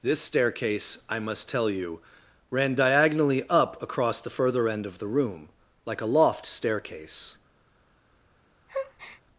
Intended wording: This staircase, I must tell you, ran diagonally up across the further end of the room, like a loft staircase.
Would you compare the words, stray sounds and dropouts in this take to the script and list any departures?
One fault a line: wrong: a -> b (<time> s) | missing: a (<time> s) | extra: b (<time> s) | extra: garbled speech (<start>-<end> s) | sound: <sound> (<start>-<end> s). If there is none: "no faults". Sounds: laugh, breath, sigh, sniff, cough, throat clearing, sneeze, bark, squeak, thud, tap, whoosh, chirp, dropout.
sound: breath (8.7-9.2 s)